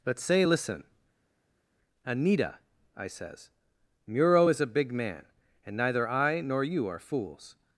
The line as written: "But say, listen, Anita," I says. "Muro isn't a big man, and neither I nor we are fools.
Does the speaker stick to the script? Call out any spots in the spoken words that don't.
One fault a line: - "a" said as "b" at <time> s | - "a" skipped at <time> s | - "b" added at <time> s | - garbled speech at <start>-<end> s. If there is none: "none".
- "isn't" said as "is" at 4.5 s
- "we" said as "you" at 6.6 s